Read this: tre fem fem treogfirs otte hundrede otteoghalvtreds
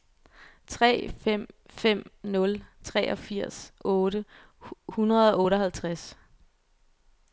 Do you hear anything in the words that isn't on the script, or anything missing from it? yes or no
yes